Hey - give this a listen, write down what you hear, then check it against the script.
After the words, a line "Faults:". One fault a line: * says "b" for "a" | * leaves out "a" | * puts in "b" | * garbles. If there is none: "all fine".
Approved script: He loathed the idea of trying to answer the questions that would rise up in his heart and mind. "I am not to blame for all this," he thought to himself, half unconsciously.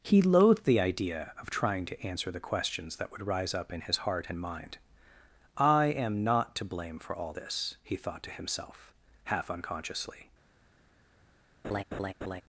He loathed the idea of trying to answer the questions that would rise up in his heart and mind. "I am not to blame for all this," he thought to himself, half unconsciously.
Faults:
all fine